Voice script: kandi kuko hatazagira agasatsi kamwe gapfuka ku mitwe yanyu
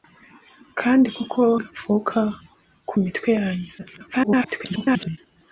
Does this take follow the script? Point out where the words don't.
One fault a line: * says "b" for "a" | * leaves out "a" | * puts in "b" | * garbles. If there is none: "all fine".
* leaves out "hatazagira agasatsi kamwe"
* garbles